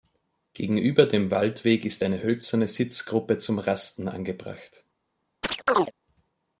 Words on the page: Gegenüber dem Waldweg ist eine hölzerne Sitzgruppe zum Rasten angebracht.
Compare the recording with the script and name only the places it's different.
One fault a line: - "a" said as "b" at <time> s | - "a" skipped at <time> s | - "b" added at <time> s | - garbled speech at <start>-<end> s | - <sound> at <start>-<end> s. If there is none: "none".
- chirp at 5.4-5.9 s